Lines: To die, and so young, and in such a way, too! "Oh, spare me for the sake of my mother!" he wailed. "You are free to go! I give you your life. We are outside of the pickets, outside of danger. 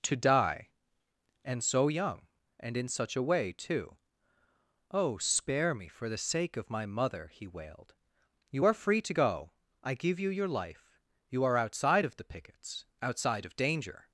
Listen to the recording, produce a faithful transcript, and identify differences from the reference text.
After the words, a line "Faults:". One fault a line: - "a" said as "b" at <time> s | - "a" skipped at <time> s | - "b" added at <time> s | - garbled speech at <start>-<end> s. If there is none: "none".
To die, and so young, and in such a way, too! "Oh, spare me for the sake of my mother!" he wailed. "You are free to go! I give you your life. You are outside of the pickets, outside of danger.
Faults:
- "We" said as "You" at 11.3 s